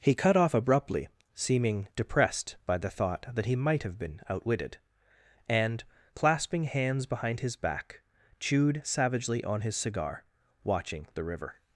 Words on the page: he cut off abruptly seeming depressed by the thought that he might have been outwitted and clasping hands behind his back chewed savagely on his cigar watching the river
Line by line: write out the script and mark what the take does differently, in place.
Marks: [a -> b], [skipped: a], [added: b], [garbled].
he cut off abruptly seeming depressed by the thought that he might have been outwitted and clasping hands behind his back chewed savagely on his cigar watching the river